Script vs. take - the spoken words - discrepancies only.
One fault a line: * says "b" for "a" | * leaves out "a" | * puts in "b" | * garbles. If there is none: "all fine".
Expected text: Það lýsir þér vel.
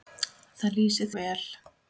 * leaves out "þér"